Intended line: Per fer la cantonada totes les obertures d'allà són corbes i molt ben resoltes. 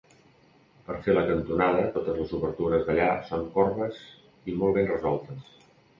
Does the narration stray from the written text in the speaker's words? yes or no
no